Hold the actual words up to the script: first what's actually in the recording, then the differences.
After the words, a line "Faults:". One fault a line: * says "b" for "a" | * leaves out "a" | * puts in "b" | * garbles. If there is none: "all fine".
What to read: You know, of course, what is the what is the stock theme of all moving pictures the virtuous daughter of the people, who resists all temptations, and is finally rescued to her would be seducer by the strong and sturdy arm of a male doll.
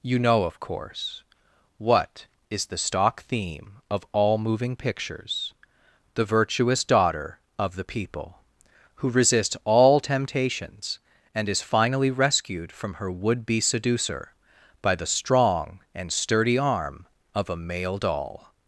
You know, of course, what is the stock theme of all moving pictures the virtuous daughter of the people, who resists all temptations, and is finally rescued from her would be seducer by the strong and sturdy arm of a male doll.
Faults:
* leaves out "what is the"
* says "from" for "to"